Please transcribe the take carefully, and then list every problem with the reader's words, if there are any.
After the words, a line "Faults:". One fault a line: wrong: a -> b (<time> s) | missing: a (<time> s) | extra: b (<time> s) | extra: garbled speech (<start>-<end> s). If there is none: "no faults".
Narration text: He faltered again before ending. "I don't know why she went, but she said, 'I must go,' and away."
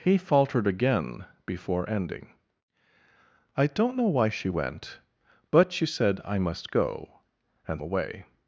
He faltered again before ending. "I don't know why she went, but she said, 'I must go,' and away."
Faults:
no faults